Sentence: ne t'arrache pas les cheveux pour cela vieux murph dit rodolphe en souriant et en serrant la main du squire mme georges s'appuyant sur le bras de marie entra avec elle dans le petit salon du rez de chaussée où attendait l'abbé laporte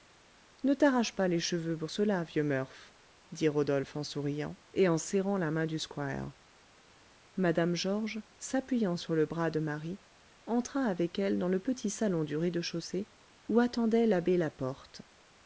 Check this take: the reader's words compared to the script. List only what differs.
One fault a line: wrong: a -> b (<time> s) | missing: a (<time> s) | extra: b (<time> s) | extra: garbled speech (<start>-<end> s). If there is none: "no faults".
no faults